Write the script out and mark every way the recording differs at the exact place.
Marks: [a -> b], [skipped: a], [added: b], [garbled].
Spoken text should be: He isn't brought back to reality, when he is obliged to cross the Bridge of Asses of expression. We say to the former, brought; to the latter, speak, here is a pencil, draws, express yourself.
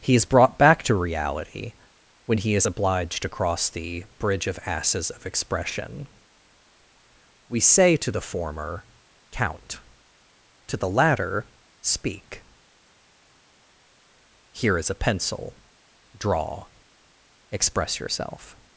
He [isn't -> is] brought back to reality, when he is obliged to cross the Bridge of Asses of expression. We say to the former, [brought; -> count] to the latter, speak, here is a pencil, [draws, -> draw] express yourself.